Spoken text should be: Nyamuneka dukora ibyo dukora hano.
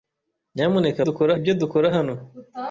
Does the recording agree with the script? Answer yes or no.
yes